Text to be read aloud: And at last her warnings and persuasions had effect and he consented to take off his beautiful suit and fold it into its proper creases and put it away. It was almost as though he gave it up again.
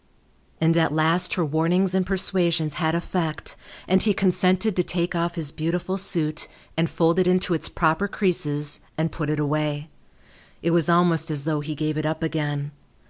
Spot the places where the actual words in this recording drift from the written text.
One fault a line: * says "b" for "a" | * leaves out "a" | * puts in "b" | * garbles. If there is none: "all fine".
all fine